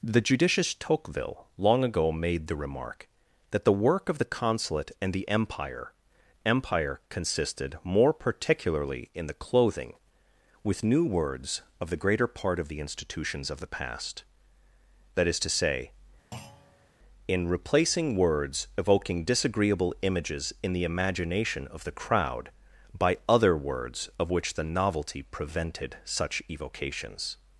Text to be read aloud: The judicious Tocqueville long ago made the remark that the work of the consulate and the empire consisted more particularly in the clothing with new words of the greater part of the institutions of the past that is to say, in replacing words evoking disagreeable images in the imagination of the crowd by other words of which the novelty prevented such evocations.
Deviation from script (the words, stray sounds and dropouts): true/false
true